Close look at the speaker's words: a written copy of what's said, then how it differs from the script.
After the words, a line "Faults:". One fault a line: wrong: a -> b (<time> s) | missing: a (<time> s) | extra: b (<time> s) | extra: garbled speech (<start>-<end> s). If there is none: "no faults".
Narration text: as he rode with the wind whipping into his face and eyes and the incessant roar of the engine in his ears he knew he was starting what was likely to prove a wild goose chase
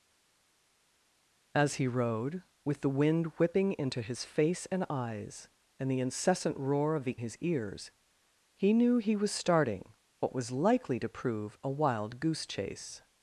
as he rode with the wind whipping into his face and eyes and the incessant roar of the his ears he knew he was starting what was likely to prove a wild goose chase
Faults:
missing: engine in (7.2 s)